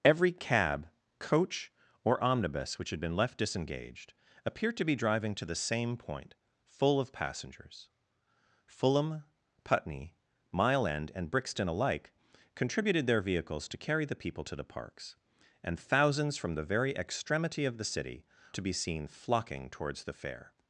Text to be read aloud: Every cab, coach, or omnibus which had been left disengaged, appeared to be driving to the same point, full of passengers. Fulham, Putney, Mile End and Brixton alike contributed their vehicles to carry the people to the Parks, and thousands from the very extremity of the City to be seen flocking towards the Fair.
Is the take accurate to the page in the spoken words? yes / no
yes